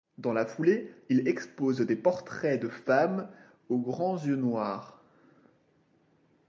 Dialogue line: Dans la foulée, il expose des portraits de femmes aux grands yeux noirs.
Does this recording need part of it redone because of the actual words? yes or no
no